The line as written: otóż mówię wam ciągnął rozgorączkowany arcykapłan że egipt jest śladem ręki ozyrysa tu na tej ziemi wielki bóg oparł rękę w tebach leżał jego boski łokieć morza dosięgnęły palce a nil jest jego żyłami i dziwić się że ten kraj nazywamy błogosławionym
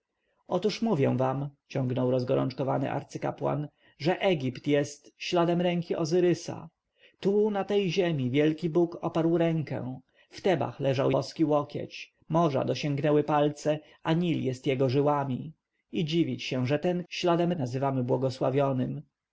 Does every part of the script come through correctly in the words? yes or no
no